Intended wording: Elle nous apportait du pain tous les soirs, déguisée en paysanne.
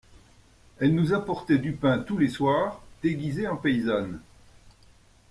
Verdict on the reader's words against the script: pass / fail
pass